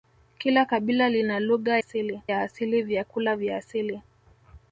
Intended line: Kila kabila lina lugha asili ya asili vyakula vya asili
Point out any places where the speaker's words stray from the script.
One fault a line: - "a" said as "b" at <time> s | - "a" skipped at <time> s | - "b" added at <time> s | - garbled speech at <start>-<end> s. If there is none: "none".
none